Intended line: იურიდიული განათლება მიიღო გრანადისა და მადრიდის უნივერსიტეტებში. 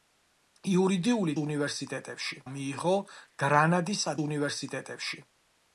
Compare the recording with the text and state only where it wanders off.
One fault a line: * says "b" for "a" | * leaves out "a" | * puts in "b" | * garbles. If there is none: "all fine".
* says "უნივერსიტეტებში" for "განათლება"
* leaves out "და მადრიდის"